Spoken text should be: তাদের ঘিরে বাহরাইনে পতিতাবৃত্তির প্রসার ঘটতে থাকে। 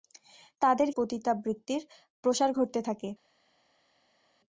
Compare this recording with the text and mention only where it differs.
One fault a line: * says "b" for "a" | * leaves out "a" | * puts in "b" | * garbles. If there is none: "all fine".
* leaves out "ঘিরে বাহরাইনে"